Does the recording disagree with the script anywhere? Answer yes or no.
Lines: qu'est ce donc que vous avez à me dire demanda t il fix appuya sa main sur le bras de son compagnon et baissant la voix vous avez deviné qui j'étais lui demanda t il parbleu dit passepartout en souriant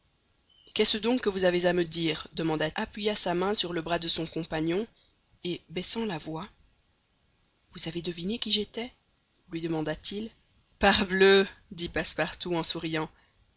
yes